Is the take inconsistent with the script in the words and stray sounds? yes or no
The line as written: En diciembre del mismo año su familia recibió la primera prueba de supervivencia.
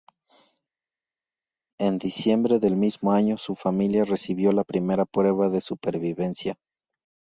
no